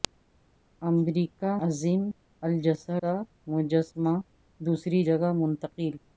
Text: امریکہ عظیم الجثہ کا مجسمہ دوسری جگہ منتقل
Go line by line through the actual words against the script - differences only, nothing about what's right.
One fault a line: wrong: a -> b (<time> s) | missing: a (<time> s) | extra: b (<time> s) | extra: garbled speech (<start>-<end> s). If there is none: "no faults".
no faults